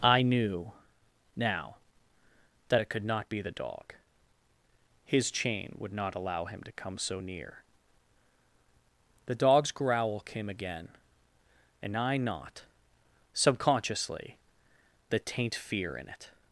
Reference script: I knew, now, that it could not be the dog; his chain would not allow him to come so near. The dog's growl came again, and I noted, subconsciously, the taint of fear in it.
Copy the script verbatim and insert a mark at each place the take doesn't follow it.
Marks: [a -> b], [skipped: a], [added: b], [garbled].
I knew, now, that it could not be the dog; his chain would not allow him to come so near. The dog's growl came again, and I [noted, -> not] subconsciously, the taint [skipped: of] fear in it.